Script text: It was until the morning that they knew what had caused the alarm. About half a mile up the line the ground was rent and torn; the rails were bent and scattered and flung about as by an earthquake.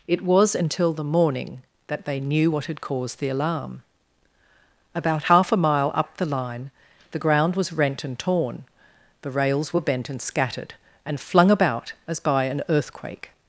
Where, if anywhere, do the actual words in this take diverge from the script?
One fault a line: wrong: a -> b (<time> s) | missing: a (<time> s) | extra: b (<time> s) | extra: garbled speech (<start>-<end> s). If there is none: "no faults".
no faults